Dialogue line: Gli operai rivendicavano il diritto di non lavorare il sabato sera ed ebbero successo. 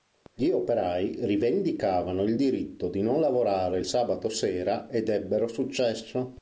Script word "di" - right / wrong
right